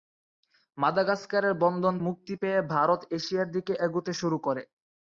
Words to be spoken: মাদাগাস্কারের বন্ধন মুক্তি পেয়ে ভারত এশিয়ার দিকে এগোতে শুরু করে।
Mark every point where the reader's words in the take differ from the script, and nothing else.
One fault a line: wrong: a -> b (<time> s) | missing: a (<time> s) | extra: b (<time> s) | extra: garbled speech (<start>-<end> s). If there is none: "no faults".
no faults